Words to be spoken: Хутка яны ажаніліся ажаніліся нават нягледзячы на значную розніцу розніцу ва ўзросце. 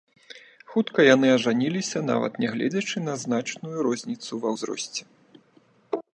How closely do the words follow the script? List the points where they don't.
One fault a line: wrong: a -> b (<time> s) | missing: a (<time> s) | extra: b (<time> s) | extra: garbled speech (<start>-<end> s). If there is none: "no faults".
missing: ажаніліся (2.0 s)
missing: розніцу (4.3 s)